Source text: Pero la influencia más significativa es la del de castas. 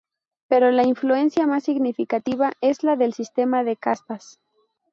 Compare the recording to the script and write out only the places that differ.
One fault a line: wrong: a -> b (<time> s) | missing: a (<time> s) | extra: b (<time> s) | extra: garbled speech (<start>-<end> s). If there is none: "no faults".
extra: sistema (3.1 s)